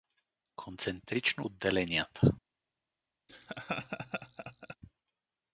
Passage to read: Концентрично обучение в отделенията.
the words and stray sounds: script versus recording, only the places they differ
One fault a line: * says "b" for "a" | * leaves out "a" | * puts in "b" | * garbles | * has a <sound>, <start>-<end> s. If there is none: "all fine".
* leaves out "обучение в"
* has a laugh, 3.3-4.8 s